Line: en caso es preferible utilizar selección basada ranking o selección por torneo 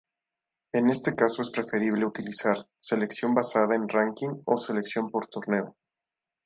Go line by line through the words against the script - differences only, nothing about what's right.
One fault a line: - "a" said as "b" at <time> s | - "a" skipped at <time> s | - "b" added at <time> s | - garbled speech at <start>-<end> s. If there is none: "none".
- "este" added at 0.9 s
- "en" added at 3.7 s